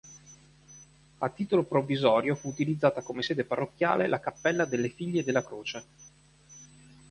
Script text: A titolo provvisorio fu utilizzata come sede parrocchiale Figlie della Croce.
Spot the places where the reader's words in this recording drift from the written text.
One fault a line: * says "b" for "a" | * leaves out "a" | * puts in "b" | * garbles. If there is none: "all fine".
* puts in "la cappella delle"